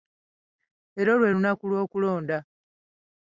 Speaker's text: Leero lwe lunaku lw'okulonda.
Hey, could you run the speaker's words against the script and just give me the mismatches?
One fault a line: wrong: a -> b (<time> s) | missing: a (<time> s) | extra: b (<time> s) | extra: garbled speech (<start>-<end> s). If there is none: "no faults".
no faults